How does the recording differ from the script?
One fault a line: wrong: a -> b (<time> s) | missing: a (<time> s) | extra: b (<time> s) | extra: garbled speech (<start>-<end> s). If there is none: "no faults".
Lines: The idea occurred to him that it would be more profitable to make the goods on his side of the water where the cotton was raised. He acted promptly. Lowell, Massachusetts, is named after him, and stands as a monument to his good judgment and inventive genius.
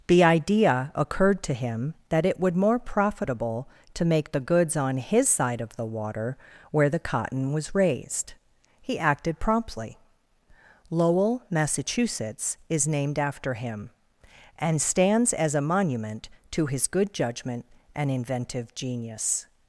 missing: be (2.5 s)